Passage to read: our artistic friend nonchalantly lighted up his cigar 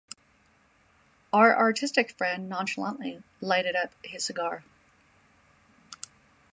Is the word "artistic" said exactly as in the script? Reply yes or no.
yes